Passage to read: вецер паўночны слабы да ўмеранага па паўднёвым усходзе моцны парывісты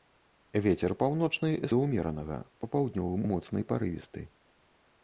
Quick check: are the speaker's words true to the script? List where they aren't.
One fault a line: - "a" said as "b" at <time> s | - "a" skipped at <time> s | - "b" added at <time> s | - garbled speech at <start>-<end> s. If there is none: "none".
- "слабы" skipped at 1.5 s
- "усходзе" skipped at 3.2 s